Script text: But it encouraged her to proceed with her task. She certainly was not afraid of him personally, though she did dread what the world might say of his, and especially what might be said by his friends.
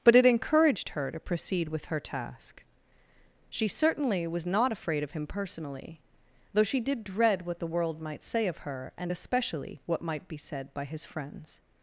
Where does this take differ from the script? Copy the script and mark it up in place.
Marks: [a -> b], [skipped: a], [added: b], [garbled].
But it encouraged her to proceed with her task. She certainly was not afraid of him personally, though she did dread what the world might say of [his, -> her] and especially what might be said by his friends.